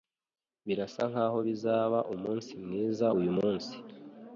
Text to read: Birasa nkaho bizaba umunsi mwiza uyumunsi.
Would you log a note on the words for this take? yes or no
no